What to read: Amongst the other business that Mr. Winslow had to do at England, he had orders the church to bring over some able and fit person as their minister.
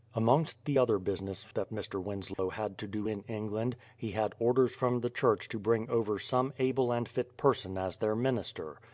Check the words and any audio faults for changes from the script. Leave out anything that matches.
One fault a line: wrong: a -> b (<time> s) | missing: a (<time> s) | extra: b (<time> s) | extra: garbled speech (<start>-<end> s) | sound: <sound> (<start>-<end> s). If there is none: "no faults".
sound: dropout (2.3-2.4 s)
wrong: at -> in (3.1 s)
extra: from (4.7 s)